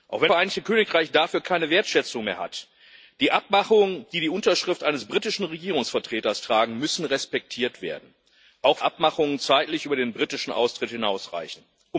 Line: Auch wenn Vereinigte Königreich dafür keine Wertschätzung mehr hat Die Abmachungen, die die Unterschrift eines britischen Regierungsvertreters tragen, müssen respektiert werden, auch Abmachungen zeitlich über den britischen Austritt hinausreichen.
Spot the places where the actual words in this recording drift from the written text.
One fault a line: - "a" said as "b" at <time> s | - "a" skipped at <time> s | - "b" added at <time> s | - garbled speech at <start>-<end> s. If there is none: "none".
none